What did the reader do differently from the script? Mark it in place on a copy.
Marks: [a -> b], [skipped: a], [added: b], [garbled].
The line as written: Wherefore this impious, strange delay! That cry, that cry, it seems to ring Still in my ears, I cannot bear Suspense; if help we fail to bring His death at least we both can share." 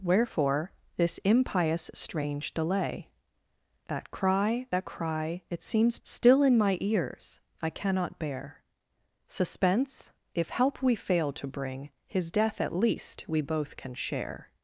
Wherefore this impious, strange delay! That cry, that cry, it seems [skipped: to ring] Still in my ears, I cannot bear Suspense; if help we fail to bring His death at least we both can share."